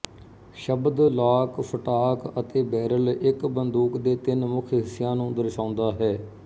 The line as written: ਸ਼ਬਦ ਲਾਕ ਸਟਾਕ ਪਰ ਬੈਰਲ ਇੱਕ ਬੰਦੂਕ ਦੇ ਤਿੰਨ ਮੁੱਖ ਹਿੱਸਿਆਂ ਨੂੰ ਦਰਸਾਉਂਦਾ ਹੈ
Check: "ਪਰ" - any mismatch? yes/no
yes